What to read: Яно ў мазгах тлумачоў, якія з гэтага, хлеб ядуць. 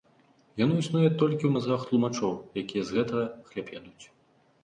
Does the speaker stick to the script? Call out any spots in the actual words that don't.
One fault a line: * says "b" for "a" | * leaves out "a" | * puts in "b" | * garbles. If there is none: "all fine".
* puts in "існуе толькі"